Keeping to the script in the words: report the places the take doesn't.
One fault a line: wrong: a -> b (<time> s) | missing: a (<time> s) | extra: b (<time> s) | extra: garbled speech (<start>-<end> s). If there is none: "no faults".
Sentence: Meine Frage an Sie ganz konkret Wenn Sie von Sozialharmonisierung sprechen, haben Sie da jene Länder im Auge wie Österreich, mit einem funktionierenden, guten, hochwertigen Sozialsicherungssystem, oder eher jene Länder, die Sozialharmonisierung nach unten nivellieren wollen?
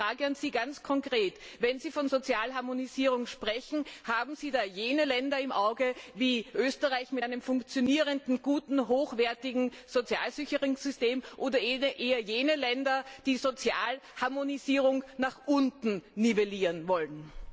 no faults